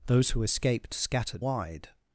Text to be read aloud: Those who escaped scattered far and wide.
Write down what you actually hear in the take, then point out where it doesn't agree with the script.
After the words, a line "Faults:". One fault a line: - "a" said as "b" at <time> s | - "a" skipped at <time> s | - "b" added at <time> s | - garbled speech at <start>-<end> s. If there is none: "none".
Those who escaped scattered wide.
Faults:
- "far and" skipped at 1.4 s